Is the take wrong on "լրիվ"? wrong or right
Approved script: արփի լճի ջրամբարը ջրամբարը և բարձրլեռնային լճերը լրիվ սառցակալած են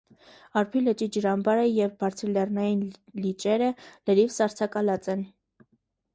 right